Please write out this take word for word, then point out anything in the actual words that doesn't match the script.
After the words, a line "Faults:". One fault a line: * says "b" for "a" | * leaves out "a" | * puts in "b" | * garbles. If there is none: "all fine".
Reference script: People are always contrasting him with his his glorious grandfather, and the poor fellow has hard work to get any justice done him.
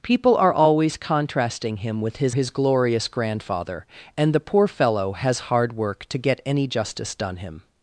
People are always contrasting him with his his glorious grandfather, and the poor fellow has hard work to get any justice done him.
Faults:
all fine